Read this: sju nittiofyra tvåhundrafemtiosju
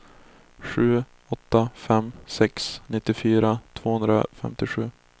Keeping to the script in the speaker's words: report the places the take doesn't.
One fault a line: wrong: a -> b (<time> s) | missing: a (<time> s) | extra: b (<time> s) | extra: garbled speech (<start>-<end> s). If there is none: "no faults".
extra: åtta fem sex (1.3 s)